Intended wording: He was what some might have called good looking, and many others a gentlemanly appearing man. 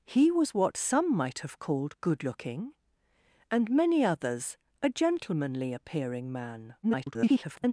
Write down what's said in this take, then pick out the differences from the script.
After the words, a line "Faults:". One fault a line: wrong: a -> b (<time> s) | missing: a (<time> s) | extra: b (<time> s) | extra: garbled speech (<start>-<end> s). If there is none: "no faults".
He was what some might have called good looking, and many others a gentlemanly appearing man. [garbled]
Faults:
extra: garbled speech (6.8-7.7 s)